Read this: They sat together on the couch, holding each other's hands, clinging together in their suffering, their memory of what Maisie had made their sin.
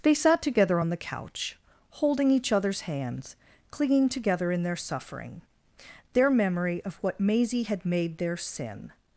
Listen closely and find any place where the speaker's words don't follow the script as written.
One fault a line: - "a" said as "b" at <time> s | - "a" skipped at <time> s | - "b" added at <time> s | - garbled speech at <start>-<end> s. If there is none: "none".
none